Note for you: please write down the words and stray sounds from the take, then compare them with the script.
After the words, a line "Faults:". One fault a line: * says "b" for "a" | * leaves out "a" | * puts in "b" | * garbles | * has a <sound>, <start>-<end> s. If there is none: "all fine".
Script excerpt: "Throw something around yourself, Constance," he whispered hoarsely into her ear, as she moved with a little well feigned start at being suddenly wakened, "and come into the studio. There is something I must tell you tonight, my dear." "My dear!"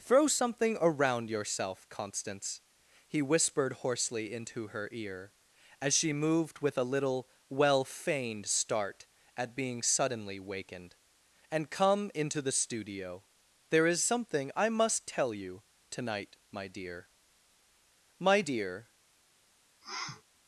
"Throw something around yourself, Constance," he whispered hoarsely into her ear, as she moved with a little well feigned start at being suddenly wakened, "and come into the studio. There is something I must tell you tonight, my dear." "My dear!"
Faults:
* has a sniff, 19.8-20.2 s